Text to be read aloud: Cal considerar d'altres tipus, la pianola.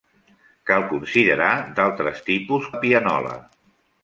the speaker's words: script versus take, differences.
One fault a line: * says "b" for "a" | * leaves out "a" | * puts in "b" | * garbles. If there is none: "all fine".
all fine